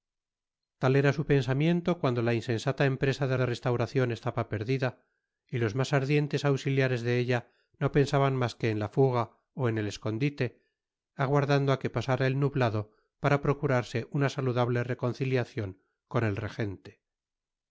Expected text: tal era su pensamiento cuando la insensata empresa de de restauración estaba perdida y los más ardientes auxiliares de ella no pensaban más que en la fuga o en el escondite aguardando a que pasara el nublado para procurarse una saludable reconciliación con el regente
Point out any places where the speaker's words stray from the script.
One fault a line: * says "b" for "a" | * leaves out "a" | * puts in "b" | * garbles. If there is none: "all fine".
all fine